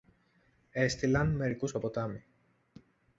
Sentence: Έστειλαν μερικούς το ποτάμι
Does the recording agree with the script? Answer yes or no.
yes